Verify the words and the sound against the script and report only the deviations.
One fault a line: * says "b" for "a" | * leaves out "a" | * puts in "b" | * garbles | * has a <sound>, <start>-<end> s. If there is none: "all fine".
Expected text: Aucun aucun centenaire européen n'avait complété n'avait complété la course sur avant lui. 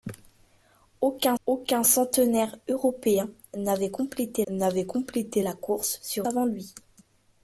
all fine